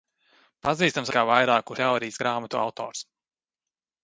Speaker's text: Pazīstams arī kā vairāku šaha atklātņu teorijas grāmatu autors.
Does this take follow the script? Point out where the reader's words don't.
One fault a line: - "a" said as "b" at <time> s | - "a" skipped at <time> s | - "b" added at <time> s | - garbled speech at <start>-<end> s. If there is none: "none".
- "arī" skipped at 1.1 s
- "šaha atklātņu" skipped at 1.8 s